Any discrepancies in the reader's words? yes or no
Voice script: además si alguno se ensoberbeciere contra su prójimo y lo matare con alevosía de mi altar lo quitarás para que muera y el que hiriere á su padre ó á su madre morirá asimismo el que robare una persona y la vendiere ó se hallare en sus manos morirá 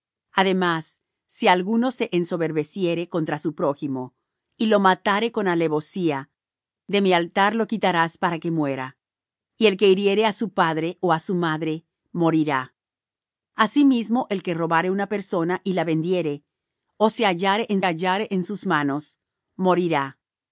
yes